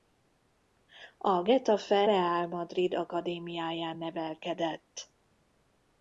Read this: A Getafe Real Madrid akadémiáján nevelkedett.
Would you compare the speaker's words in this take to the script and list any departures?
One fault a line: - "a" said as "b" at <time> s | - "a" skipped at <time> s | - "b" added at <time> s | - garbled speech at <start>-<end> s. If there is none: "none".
none